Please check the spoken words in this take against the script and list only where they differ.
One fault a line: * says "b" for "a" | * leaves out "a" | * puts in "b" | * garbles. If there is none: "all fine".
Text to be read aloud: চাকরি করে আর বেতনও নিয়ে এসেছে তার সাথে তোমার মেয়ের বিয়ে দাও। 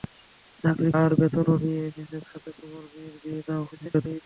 * leaves out "করে"
* leaves out "তার"
* garbles